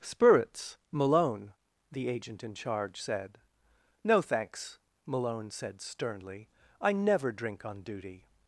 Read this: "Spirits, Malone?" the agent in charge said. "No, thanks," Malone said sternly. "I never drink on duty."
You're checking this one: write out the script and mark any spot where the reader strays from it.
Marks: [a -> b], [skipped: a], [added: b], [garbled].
"Spirits, Malone?" the agent in charge said. "No, thanks," Malone said sternly. "I never drink on duty."